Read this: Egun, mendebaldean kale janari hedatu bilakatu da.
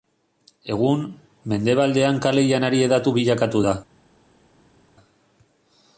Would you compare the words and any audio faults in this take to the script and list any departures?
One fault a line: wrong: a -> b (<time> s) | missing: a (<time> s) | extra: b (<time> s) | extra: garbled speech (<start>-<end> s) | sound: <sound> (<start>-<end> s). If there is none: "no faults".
no faults